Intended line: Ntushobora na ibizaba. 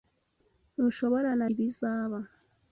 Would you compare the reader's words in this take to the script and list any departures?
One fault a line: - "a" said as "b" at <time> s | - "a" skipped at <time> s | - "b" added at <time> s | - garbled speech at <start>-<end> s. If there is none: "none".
none